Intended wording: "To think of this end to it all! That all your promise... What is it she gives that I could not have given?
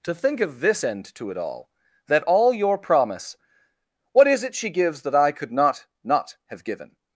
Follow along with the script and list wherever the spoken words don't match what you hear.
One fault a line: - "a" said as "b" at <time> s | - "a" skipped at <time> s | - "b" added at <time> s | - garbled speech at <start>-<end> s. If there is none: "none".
- "not" added at 6.0 s